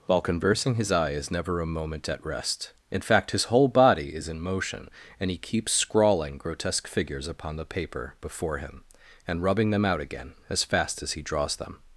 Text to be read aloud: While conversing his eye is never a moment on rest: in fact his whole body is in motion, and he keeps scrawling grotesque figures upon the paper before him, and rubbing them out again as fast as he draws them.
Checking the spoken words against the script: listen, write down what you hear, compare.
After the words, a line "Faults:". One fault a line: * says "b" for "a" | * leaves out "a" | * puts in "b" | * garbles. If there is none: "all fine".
While conversing his eye is never a moment at rest: in fact his whole body is in motion, and he keeps scrawling grotesque figures upon the paper before him, and rubbing them out again as fast as he draws them.
Faults:
* says "at" for "on"